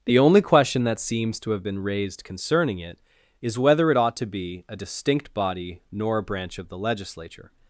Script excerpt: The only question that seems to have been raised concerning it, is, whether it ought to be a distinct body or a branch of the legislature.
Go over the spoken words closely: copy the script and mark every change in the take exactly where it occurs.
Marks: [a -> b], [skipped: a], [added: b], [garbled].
The only question that seems to have been raised concerning it, is, whether it ought to be a distinct body [or -> nor] a branch of the legislature.